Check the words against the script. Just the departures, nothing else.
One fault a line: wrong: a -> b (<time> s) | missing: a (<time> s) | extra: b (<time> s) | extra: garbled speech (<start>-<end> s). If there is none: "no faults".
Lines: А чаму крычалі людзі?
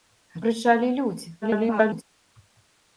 missing: чаму (0.4 s)
extra: garbled speech (1.4-2.0 s)